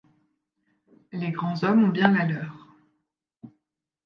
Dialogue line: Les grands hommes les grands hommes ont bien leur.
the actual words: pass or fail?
fail